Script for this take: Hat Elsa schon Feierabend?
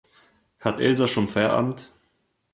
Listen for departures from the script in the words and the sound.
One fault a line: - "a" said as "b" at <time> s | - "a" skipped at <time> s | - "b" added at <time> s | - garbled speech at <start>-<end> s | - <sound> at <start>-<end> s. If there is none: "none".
none